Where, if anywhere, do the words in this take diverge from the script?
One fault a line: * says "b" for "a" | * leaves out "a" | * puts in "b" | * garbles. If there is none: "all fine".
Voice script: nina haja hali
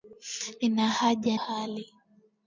all fine